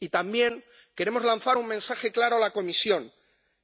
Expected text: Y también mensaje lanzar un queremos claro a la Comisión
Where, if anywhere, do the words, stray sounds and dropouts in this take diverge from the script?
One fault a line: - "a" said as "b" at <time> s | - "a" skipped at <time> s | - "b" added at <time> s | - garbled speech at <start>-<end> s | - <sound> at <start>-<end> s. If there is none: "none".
- "mensaje" said as "queremos" at 0.9 s
- "queremos" said as "mensaje" at 1.7 s